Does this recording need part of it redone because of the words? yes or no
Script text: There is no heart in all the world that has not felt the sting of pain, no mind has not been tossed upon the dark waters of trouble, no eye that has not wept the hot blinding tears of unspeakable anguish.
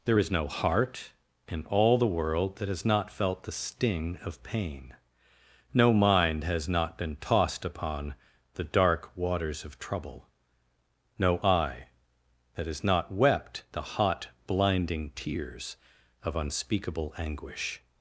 no